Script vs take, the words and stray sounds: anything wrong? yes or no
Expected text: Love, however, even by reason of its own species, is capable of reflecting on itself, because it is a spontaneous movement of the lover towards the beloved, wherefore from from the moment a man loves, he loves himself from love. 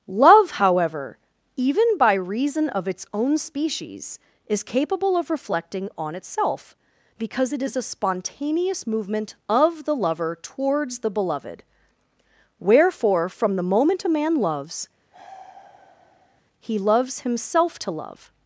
yes